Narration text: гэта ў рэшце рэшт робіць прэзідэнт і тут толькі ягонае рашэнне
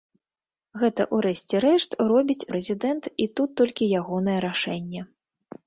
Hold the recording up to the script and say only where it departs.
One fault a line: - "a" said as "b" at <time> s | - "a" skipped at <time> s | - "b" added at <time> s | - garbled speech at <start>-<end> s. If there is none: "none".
none